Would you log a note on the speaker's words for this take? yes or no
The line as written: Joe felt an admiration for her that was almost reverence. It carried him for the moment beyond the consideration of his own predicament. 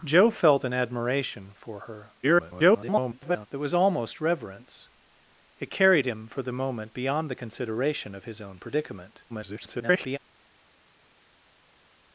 yes